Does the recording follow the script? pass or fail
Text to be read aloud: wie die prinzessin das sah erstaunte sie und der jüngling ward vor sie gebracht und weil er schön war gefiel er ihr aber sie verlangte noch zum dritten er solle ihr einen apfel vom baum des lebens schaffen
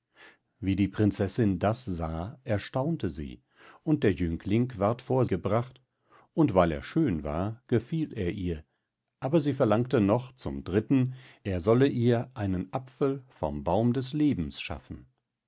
fail